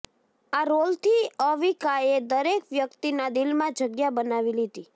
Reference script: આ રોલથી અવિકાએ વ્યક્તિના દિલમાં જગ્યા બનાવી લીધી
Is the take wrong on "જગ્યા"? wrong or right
right